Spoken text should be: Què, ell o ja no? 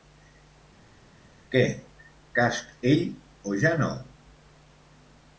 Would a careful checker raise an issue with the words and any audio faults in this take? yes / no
yes